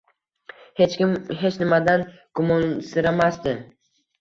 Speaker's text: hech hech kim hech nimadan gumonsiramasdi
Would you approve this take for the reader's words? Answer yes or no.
no